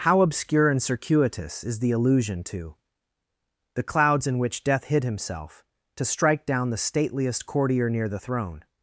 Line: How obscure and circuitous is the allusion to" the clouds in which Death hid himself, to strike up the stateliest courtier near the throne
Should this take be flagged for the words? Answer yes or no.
yes